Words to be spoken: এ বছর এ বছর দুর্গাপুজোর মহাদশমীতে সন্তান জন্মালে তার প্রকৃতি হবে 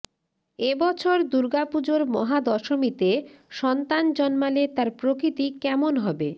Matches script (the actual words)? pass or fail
fail